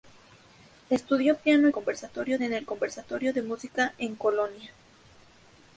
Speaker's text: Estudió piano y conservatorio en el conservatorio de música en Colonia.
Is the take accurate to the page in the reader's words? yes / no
yes